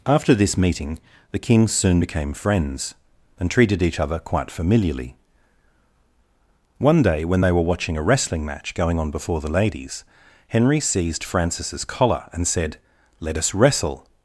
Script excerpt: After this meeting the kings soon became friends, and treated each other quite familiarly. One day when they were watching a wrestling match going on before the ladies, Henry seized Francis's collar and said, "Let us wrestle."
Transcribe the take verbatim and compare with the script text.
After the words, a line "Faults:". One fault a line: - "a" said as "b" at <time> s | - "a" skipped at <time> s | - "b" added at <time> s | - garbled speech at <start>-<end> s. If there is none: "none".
After this meeting the kings soon became friends, and treated each other quite familiarly. One day when they were watching a wrestling match going on before the ladies, Henry seized Francis's collar and said, "Let us wrestle."
Faults:
none